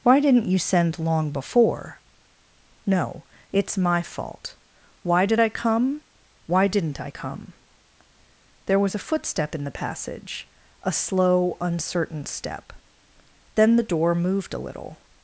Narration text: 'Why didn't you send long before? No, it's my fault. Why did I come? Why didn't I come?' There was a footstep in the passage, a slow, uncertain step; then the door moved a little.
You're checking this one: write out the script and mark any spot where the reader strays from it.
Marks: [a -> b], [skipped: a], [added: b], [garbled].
'Why didn't you send long before? No, it's my fault. Why did I come? Why didn't I come?' There was a footstep in the passage, a slow, uncertain step; then the door moved a little.